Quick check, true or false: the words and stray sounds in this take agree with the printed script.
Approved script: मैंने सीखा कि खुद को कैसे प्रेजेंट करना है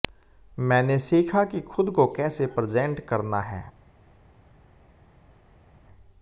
true